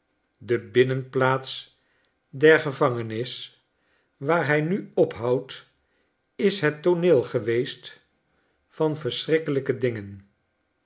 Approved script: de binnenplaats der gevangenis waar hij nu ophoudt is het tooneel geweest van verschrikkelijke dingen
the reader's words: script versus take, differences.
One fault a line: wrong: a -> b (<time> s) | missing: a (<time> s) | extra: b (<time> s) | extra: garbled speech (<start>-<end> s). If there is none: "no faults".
no faults